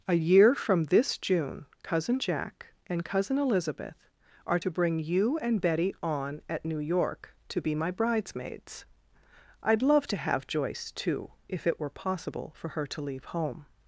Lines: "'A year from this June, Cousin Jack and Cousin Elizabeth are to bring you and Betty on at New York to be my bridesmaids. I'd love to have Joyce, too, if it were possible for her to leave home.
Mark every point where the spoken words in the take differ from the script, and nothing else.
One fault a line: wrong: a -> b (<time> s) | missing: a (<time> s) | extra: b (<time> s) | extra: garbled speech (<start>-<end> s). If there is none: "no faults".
no faults